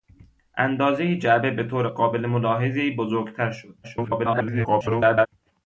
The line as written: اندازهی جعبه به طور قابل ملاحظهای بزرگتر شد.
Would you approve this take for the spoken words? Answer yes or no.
no